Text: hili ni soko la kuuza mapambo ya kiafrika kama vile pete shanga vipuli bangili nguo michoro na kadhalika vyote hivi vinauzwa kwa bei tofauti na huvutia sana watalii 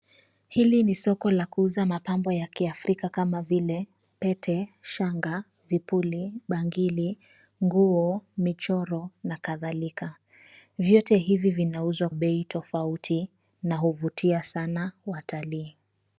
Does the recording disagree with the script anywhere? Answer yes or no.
yes